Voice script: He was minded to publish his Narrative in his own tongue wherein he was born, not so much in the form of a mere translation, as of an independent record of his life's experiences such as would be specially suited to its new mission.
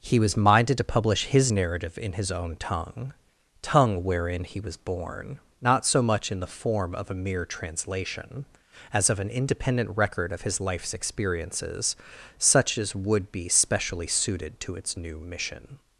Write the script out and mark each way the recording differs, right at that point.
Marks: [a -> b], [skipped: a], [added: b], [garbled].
He was minded to publish his Narrative in his own tongue [added: tongue] wherein he was born, not so much in the form of a mere translation, as of an independent record of his life's experiences such as would be specially suited to its new mission.